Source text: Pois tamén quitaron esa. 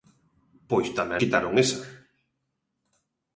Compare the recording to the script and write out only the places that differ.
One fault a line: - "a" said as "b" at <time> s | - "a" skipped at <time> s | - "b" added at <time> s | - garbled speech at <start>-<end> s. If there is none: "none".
none